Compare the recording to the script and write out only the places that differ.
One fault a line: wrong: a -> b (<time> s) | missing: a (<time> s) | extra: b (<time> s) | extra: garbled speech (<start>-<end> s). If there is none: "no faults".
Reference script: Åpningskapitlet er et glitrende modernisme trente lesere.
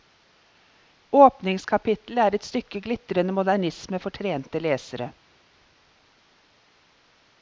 extra: stykke (2.5 s)
extra: for (4.0 s)